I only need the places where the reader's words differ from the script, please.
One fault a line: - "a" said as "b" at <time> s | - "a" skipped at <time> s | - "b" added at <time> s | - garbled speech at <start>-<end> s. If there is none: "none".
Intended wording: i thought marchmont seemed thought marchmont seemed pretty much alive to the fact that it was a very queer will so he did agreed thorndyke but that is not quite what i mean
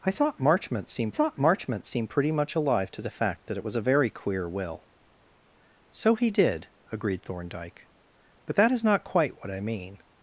none